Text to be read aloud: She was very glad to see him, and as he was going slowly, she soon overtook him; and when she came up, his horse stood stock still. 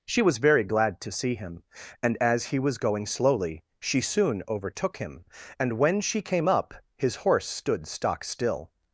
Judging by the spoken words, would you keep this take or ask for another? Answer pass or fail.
pass